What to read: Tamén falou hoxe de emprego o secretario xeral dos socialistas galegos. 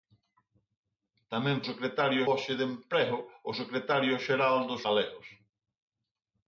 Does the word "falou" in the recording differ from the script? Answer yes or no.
yes